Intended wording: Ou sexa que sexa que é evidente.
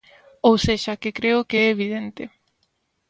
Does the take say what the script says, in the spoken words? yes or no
no